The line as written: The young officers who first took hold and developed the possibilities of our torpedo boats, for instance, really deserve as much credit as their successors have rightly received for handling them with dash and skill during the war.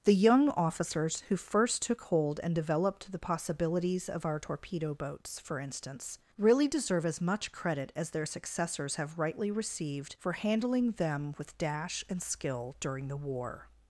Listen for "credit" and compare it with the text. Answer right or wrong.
right